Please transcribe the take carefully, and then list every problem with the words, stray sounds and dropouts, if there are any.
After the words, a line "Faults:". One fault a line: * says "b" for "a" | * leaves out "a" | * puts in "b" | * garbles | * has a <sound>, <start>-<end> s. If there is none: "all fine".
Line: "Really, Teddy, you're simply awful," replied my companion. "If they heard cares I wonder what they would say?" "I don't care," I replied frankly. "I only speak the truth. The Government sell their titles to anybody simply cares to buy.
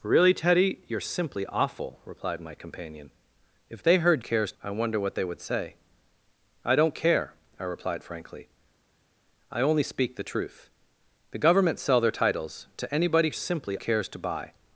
"Really, Teddy, you're simply awful," replied my companion. "If they heard cares I wonder what they would say?" "I don't care," I replied frankly. "I only speak the truth. The Government sell their titles to anybody simply cares to buy.
Faults:
all fine